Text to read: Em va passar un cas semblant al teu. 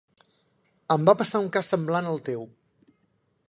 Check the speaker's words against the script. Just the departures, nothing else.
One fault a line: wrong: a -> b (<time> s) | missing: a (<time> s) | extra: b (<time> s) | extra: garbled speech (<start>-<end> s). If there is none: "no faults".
no faults